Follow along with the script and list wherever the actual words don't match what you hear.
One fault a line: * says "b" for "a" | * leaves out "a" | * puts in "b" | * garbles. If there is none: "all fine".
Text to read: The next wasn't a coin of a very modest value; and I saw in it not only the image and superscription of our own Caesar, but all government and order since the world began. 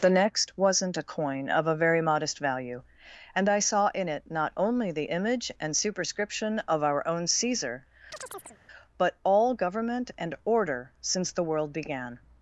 all fine